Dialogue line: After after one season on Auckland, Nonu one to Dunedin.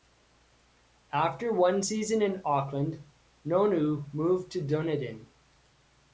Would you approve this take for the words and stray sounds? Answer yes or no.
no